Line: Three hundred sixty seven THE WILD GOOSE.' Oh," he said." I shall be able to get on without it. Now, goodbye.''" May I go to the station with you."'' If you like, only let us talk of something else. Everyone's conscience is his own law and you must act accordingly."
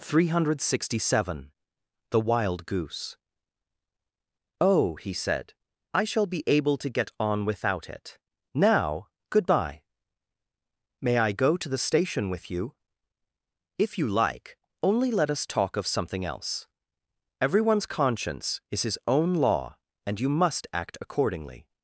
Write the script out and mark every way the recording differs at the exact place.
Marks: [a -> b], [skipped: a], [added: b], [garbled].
Three hundred sixty seven THE WILD GOOSE.' Oh," he said." I shall be able to get on without it. Now, goodbye.''" May I go to the station with you."'' If you like, only let us talk of something else. Everyone's conscience is his own law and you must act accordingly."